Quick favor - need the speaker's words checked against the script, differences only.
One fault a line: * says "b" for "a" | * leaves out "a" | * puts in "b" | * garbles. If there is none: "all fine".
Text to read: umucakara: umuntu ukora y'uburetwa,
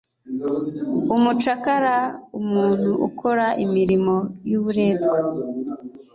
* puts in "imirimo"